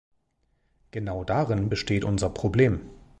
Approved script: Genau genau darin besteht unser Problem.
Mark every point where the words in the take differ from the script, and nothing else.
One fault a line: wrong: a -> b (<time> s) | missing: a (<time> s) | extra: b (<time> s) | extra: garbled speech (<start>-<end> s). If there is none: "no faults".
missing: genau (1.2 s)